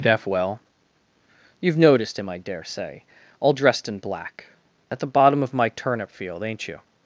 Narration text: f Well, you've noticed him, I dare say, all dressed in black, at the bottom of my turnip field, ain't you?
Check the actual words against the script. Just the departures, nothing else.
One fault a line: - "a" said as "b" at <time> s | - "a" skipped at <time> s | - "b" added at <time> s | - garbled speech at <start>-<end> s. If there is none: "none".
- "f" said as "deaf" at 0.0 s